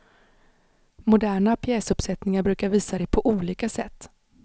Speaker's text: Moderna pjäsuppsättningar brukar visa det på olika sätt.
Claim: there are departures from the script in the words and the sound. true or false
false